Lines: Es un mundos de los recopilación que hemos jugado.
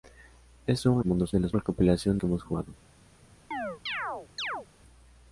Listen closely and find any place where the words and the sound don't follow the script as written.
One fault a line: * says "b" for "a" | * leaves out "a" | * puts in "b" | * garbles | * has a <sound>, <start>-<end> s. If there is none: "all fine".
* has a chirp, 3.5-4.7 s